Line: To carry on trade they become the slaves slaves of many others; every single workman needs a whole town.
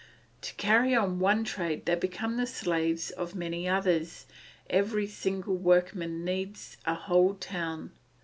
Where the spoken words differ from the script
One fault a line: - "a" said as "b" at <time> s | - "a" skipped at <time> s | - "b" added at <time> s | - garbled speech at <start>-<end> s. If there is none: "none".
- "one" added at 1.2 s
- "slaves" skipped at 3.1 s